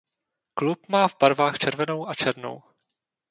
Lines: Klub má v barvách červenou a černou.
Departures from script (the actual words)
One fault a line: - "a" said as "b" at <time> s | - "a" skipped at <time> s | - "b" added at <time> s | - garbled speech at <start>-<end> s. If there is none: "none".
none